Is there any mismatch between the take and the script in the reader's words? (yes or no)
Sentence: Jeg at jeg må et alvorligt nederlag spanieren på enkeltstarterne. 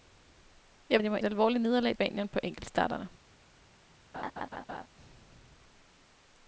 no